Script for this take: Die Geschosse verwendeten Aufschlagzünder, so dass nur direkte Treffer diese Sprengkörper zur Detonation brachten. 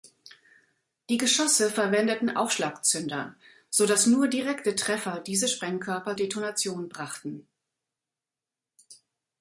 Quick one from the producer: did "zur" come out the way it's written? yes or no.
no